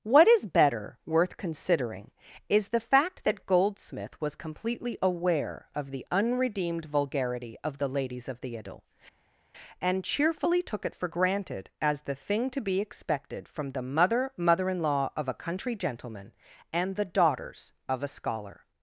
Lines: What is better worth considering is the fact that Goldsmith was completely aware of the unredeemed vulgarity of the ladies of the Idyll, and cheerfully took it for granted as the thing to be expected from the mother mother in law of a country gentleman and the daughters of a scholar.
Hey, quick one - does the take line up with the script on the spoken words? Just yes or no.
yes